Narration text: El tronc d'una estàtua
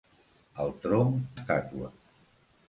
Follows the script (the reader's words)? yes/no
no